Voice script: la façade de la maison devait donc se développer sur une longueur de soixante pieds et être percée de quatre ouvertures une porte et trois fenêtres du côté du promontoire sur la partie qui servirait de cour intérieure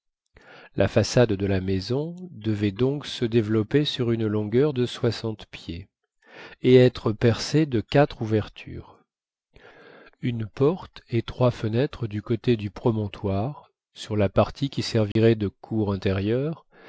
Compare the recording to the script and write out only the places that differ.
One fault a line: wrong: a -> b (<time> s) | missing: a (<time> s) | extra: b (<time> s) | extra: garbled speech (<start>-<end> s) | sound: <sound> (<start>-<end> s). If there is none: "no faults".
sound: dropout (15.1-15.2 s)